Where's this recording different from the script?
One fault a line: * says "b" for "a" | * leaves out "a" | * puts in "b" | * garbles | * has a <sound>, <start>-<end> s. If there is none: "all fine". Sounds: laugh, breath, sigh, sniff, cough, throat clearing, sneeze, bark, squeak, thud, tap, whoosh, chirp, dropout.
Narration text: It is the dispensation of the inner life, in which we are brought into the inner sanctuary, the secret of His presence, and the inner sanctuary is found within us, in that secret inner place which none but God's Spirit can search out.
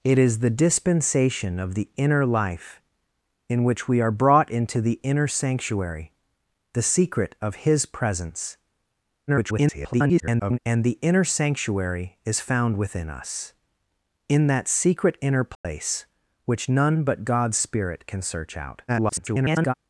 * garbles
* has a dropout, 15.5-15.6 s
* garbles